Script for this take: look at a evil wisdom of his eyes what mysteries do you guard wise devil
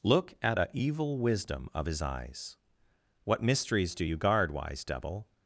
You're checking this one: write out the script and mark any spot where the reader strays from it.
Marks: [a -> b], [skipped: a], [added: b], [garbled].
look at a evil wisdom of his eyes what mysteries do you guard wise devil